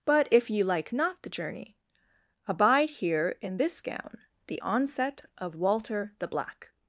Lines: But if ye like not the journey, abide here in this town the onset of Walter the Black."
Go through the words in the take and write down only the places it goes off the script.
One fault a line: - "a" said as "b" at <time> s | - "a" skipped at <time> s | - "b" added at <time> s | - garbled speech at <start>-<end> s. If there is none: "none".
- "town" said as "gown" at 3.8 s